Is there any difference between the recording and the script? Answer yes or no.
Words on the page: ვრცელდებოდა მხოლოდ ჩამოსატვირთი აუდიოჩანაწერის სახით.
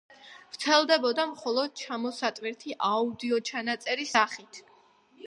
no